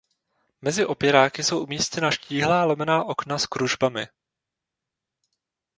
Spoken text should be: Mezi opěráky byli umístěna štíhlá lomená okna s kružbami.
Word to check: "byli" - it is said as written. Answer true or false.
false